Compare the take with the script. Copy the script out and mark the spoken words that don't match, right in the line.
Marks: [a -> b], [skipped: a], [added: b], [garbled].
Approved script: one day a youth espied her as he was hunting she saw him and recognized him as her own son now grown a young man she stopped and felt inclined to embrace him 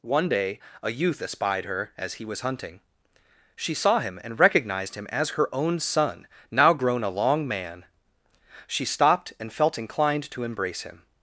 one day a youth espied her as he was hunting she saw him and recognized him as her own son now grown a [young -> long] man she stopped and felt inclined to embrace him